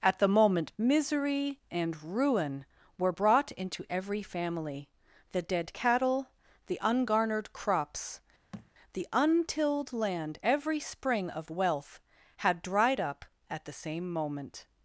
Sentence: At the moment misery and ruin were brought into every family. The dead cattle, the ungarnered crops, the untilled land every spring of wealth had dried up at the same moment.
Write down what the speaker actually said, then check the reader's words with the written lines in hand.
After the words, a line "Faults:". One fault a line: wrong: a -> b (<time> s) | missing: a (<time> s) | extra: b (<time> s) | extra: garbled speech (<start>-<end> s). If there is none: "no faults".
At the moment misery and ruin were brought into every family. The dead cattle, the ungarnered crops, the untilled land every spring of wealth had dried up at the same moment.
Faults:
no faults